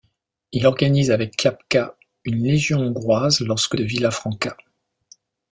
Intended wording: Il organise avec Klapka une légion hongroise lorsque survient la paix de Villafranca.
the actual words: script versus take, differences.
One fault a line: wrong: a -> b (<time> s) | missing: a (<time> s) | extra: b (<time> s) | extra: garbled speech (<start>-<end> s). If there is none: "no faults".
missing: survient la paix (3.8 s)